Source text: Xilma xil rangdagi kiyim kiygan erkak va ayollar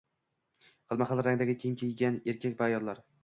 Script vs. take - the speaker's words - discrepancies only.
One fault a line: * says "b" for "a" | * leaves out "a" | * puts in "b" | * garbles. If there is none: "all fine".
all fine